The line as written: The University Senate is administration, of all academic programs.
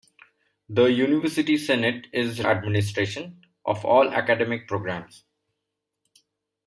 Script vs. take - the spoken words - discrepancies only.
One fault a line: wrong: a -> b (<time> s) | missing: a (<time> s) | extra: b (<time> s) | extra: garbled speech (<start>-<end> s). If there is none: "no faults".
no faults